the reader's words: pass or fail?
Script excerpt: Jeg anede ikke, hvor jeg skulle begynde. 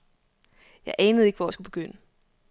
pass